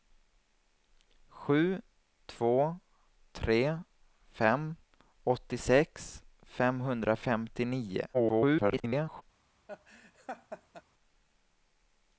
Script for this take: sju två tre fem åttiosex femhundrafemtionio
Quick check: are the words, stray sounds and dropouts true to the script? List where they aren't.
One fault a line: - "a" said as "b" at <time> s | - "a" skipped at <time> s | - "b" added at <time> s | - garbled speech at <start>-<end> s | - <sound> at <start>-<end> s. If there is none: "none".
- garbled speech at 8.1-9.2 s
- laugh at 9.7-10.8 s